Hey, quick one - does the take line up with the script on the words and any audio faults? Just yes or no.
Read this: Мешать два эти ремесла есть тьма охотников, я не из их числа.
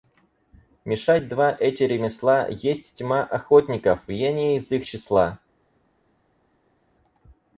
yes